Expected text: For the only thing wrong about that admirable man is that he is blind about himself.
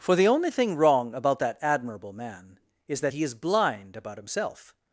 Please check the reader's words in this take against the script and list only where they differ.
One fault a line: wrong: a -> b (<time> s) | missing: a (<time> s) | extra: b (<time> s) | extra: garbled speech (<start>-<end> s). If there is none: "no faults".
no faults